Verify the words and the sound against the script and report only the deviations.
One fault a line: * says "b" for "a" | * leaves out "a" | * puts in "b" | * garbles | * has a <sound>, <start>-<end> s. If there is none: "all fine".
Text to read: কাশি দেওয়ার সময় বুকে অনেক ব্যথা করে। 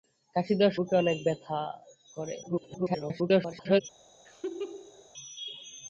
* leaves out "সময়"
* garbles
* has a laugh, 4.3-5.1 s